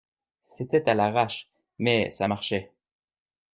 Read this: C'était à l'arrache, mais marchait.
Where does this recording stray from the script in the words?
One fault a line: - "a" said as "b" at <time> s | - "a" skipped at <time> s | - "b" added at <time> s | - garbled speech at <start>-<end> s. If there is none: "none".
- "ça" added at 2.1 s